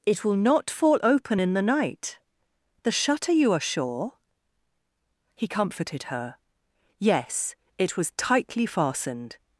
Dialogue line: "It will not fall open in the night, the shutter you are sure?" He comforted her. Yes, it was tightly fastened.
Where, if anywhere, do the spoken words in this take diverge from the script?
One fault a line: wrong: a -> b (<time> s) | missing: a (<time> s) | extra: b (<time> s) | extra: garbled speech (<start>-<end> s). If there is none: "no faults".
no faults